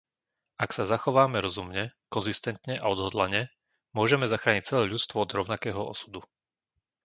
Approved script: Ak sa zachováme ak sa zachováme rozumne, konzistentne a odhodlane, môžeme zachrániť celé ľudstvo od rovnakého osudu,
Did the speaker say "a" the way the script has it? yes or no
yes